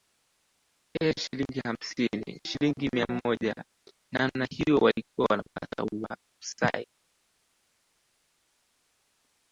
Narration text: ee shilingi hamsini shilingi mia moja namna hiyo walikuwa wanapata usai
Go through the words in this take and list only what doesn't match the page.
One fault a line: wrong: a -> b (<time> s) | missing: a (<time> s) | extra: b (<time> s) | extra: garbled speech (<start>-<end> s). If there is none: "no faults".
no faults